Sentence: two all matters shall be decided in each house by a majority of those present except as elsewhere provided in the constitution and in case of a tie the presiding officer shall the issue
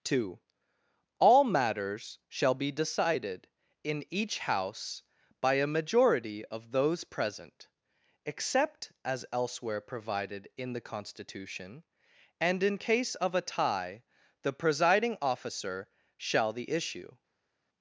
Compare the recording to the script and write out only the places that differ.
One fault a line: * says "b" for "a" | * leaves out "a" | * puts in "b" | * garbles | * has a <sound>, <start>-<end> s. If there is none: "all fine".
all fine